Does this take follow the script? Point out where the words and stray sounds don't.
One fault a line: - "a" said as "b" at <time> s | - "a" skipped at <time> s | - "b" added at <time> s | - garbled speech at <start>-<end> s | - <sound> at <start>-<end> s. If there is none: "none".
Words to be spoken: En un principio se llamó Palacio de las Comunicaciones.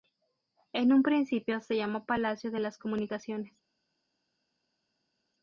none